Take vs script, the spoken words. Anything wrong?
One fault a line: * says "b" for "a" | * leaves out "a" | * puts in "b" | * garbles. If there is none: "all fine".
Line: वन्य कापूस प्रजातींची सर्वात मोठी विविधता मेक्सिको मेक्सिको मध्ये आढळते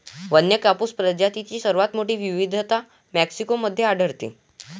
* leaves out "मेक्सिको"